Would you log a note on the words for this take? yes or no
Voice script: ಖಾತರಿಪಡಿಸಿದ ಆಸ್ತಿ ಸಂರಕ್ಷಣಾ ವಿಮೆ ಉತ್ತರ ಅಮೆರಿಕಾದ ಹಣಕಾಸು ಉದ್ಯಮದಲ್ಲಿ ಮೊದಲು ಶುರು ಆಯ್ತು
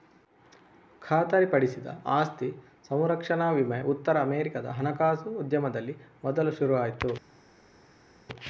no